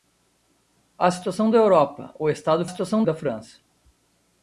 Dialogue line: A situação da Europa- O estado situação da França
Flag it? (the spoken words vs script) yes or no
no